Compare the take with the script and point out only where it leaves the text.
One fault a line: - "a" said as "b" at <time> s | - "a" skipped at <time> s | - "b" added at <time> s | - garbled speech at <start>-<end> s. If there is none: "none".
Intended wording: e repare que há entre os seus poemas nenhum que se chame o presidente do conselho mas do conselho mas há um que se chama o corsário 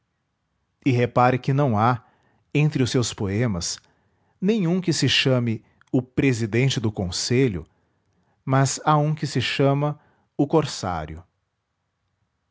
- "não" added at 1.5 s
- "do conselho mas" skipped at 8.8 s